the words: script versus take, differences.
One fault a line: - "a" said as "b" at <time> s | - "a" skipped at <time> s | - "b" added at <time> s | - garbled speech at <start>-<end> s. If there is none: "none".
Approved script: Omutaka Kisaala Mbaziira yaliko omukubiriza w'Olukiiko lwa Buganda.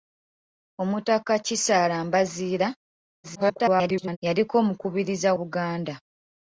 - garbled speech at 3.2-4.2 s
- "w'Olukiiko lwa" skipped at 5.3 s